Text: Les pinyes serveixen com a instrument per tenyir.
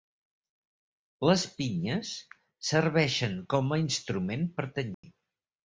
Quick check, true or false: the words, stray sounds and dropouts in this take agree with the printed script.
false